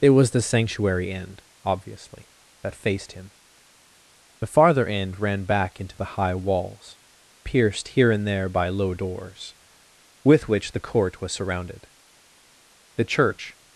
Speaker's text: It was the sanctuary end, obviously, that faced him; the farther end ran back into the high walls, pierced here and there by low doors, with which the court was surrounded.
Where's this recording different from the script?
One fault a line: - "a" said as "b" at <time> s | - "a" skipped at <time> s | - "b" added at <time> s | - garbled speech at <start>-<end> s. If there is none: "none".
- "The church" added at 12.9 s